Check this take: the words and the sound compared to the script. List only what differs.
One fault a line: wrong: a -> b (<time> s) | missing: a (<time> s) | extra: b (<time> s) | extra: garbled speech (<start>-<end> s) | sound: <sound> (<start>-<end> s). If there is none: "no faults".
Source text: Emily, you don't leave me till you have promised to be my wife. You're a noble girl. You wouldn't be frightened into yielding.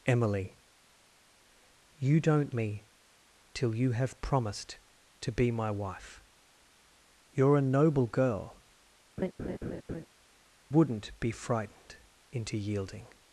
missing: leave (2.5 s)
missing: You (8.6 s)
sound: laugh (9.2-10.1 s)